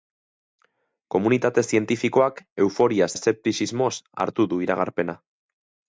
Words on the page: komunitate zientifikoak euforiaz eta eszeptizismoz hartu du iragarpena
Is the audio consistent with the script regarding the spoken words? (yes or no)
no